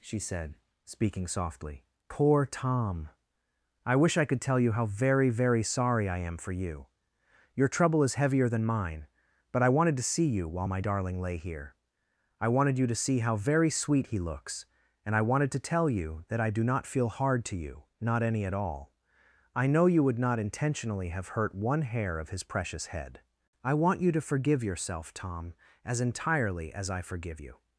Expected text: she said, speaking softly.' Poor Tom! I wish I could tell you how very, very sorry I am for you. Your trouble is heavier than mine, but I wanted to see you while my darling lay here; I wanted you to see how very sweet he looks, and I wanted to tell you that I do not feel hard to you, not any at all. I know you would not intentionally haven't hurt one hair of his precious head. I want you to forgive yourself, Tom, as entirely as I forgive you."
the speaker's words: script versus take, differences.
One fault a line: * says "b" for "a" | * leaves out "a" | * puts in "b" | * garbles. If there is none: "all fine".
* says "have" for "haven't"